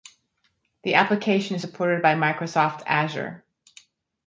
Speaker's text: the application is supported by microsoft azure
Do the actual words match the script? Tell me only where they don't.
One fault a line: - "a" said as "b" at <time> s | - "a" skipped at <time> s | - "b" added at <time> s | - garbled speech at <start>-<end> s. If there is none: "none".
none